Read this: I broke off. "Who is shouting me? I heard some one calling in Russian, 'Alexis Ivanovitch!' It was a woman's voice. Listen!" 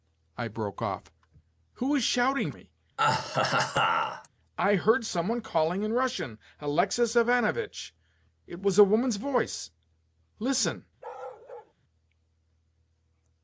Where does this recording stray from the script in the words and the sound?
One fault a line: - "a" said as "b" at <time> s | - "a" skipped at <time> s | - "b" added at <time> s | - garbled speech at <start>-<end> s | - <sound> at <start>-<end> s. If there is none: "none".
- laugh at 3.0-4.3 s
- bark at 11.0-11.7 s